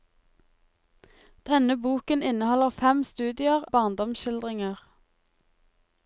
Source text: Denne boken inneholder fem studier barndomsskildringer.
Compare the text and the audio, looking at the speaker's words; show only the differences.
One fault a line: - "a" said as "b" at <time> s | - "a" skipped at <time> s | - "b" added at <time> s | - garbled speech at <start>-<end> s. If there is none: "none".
none